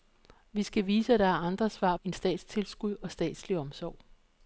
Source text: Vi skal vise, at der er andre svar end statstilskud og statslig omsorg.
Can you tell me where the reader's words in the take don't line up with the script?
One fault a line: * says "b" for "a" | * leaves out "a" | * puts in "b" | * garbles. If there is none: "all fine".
all fine